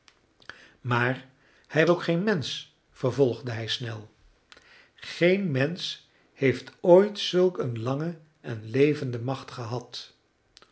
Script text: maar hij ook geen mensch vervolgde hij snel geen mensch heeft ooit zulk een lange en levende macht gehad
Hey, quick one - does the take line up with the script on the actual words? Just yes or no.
yes